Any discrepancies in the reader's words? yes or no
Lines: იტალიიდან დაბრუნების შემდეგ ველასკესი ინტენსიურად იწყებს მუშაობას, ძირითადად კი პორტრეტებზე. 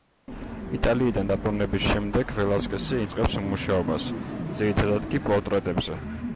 yes